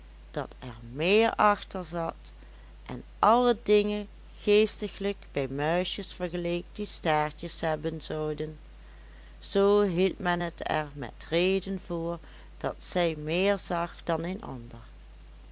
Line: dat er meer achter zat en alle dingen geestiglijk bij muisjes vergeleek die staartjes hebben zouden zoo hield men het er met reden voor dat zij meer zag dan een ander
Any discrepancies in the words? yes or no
no